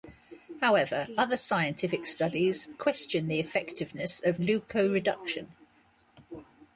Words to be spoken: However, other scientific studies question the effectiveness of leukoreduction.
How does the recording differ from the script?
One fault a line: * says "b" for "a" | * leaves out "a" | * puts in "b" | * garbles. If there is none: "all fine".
all fine